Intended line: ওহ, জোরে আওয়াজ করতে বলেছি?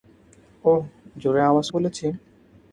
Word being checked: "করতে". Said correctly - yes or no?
no